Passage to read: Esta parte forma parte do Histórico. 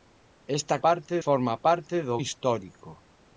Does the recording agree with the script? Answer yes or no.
yes